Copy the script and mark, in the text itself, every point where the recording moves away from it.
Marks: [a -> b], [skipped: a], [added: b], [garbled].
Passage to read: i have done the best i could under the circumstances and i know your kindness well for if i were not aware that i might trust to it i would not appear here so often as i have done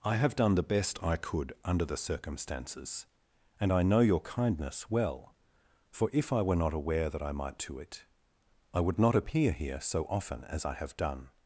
i have done the best i could under the circumstances and i know your kindness well for if i were not aware that i might [skipped: trust] to it i would not appear here so often as i have done